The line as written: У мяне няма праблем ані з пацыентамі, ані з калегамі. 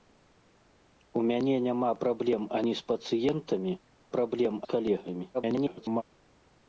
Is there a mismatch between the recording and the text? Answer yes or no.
yes